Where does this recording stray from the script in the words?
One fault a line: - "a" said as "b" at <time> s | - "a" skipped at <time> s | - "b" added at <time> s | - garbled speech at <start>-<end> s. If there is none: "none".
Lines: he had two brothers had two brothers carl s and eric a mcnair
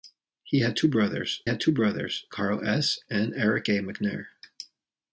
none